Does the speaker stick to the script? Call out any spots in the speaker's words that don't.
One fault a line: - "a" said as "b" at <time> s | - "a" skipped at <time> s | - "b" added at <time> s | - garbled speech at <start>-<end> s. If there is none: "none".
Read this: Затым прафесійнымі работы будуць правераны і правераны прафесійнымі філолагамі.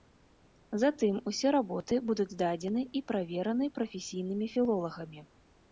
- "прафесійнымі" said as "усе" at 1.3 s
- "правераны" said as "здадзены" at 2.3 s